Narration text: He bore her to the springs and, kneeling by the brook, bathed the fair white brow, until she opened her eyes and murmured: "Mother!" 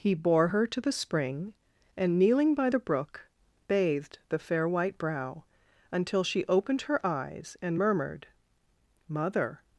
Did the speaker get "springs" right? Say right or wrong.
wrong